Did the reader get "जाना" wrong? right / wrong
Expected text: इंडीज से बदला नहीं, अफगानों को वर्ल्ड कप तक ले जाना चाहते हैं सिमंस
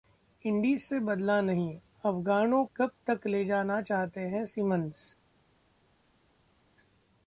right